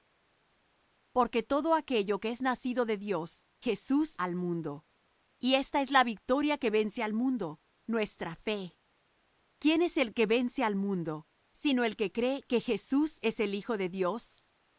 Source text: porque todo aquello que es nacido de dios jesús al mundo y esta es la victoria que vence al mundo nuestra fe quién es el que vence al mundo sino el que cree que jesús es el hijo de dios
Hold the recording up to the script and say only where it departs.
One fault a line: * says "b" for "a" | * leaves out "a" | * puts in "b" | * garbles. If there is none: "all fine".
all fine